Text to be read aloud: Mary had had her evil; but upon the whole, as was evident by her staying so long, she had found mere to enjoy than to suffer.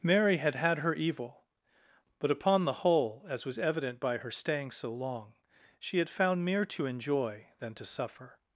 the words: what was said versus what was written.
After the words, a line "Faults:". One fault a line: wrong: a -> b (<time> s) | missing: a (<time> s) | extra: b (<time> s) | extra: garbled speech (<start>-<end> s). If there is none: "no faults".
Mary had had her evil; but upon the whole, as was evident by her staying so long, she had found mere to enjoy than to suffer.
Faults:
no faults